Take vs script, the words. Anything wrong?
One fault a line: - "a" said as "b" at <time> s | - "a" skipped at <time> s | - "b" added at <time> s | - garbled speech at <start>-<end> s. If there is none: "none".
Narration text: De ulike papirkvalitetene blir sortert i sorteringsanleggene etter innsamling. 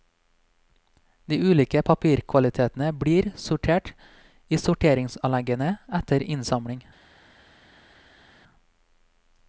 none